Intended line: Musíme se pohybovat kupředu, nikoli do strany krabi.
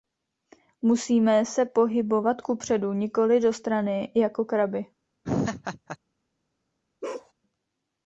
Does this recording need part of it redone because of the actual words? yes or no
yes